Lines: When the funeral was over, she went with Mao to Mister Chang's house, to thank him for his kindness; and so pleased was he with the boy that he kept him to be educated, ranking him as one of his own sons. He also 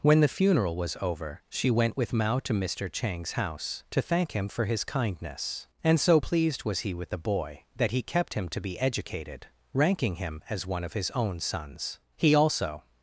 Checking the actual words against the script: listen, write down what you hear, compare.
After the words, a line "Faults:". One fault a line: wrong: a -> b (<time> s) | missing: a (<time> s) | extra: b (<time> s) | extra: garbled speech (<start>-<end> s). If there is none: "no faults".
When the funeral was over, she went with Mao to Mister Chang's house, to thank him for his kindness; and so pleased was he with the boy that he kept him to be educated, ranking him as one of his own sons. He also
Faults:
no faults